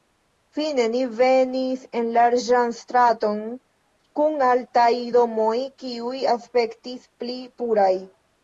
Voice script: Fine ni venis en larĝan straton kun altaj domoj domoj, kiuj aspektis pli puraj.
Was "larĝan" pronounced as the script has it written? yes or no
yes